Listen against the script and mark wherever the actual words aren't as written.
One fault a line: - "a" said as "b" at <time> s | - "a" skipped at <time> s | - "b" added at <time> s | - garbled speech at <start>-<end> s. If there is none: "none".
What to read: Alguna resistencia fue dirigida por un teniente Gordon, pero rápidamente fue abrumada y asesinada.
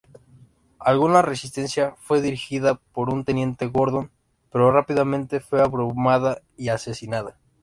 none